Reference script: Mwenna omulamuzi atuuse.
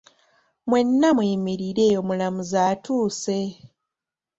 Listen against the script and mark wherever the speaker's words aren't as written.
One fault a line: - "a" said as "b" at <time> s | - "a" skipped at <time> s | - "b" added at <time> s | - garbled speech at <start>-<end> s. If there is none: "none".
- "muyimirire" added at 1.2 s